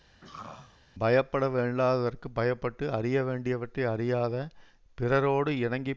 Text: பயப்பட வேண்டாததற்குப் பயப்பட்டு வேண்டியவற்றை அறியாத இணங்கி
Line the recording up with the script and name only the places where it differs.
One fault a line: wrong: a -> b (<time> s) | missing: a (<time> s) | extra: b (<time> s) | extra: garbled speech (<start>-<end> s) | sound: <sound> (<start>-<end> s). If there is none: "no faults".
sound: throat clearing (0.2-0.8 s)
extra: அறிய (2.9 s)
extra: பிறரோடு (5.0 s)